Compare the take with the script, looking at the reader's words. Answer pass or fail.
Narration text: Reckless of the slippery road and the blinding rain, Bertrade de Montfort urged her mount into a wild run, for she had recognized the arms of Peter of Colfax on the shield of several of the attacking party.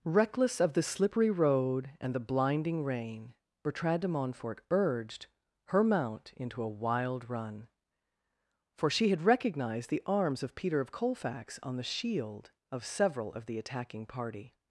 pass